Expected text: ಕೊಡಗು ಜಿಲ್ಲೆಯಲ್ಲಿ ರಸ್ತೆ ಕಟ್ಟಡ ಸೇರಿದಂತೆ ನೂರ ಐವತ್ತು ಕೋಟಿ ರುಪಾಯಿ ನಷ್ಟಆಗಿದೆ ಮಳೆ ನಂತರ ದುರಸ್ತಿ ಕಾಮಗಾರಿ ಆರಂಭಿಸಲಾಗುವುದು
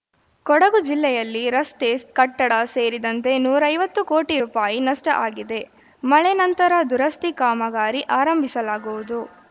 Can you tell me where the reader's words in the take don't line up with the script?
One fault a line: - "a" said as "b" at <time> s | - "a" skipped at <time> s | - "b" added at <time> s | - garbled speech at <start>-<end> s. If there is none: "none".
none